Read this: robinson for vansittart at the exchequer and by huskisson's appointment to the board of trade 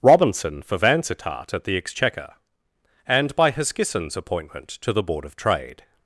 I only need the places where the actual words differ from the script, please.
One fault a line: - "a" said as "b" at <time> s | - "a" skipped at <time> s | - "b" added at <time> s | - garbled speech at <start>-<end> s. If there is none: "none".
none